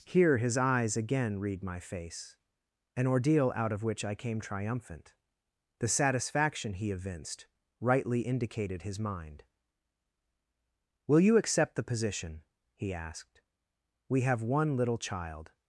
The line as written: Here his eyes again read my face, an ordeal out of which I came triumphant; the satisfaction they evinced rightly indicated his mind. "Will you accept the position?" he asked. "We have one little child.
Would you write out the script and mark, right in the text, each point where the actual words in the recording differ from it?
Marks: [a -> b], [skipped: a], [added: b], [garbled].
Here his eyes again read my face, an ordeal out of which I came triumphant; the satisfaction [they -> he] evinced rightly indicated his mind. "Will you accept the position?" he asked. "We have one little child.